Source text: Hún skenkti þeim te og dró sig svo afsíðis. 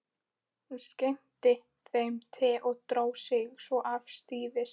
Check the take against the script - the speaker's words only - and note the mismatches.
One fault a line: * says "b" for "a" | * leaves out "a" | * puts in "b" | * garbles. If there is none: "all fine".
all fine